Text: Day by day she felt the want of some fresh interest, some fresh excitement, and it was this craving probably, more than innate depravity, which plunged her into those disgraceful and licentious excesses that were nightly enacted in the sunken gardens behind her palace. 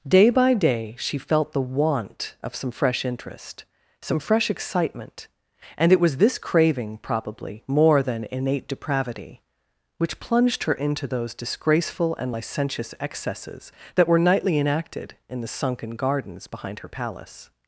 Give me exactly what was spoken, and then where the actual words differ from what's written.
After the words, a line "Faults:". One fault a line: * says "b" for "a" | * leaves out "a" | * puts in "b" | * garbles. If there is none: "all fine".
Day by day she felt the want of some fresh interest, some fresh excitement, and it was this craving probably, more than innate depravity, which plunged her into those disgraceful and licentious excesses that were nightly enacted in the sunken gardens behind her palace.
Faults:
all fine